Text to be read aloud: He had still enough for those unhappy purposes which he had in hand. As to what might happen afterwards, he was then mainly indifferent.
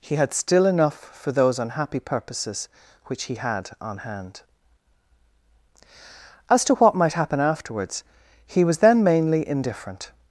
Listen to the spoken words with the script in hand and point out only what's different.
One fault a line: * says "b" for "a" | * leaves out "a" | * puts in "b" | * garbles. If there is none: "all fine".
* says "on" for "in"